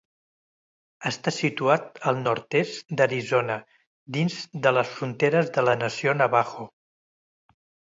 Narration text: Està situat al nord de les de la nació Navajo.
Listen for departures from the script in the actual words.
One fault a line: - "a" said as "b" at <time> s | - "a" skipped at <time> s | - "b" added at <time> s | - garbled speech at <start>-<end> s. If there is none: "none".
- "est d"Arizona dins" added at 2.6 s
- "fronteres" added at 5.0 s